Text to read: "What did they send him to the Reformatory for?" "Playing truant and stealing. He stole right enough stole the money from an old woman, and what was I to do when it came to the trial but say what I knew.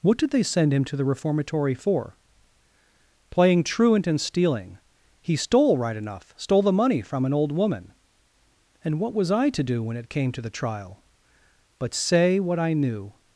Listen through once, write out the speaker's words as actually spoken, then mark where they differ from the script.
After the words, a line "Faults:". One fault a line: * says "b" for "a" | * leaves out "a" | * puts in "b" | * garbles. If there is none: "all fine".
"What did they send him to the Reformatory for?" "Playing truant and stealing. He stole right enough stole the money from an old woman, and what was I to do when it came to the trial but say what I knew.
Faults:
all fine